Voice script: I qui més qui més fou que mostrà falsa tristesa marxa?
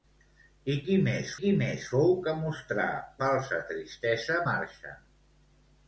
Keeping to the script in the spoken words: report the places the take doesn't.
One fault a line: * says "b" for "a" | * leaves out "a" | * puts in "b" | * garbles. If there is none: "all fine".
all fine